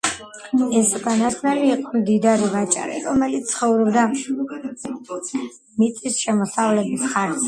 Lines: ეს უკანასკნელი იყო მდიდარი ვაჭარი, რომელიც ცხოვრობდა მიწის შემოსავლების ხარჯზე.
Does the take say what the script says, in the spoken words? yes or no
yes